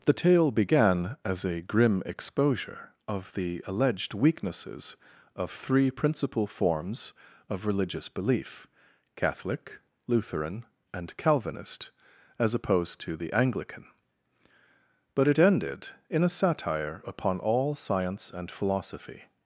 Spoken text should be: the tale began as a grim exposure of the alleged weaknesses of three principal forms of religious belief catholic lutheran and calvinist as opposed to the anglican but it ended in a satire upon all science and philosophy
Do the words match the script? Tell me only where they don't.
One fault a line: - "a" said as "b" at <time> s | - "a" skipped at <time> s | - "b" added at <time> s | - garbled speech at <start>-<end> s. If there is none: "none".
none